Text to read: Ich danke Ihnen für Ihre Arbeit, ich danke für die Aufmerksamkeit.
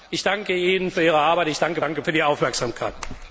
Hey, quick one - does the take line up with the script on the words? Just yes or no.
no